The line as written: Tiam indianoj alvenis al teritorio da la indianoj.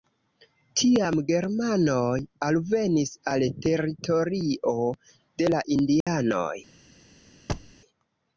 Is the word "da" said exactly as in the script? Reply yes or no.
no